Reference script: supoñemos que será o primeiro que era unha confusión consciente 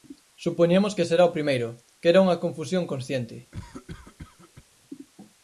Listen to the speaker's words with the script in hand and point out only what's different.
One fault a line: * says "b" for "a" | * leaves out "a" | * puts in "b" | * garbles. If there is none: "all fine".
all fine